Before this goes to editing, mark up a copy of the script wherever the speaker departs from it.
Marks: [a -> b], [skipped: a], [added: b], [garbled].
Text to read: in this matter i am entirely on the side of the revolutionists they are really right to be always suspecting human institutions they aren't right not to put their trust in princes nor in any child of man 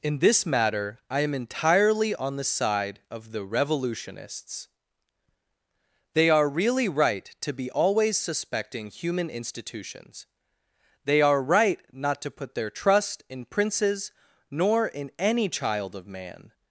in this matter i am entirely on the side of the revolutionists they are really right to be always suspecting human institutions they [aren't -> are] right not to put their trust in princes nor in any child of man